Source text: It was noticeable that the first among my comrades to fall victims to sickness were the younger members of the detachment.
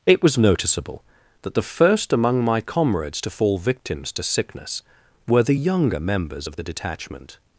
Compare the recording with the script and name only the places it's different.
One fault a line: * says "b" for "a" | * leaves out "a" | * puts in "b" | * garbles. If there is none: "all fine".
all fine